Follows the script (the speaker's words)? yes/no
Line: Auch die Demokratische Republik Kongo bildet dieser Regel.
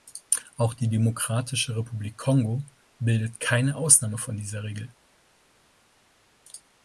no